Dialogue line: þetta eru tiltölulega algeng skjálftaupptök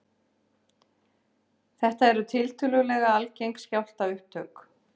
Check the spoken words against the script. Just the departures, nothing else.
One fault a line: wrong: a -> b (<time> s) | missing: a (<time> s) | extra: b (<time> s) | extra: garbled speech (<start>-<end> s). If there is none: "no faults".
no faults